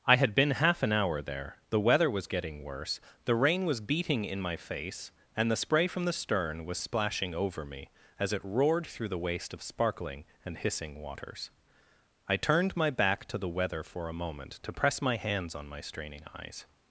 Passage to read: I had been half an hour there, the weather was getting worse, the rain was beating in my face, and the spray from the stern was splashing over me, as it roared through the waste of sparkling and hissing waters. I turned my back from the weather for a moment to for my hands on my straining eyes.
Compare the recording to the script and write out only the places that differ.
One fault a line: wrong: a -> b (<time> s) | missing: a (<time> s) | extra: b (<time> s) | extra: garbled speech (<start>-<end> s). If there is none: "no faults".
wrong: from -> to (13.2 s)
wrong: for -> press (14.7 s)